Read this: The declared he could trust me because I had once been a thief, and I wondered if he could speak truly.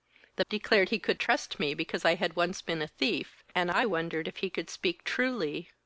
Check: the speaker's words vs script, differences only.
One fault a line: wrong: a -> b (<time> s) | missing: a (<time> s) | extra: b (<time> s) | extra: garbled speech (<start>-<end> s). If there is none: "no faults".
no faults